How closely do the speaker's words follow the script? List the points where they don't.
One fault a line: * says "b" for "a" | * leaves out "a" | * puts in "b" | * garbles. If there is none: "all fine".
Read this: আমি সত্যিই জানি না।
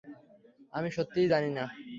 all fine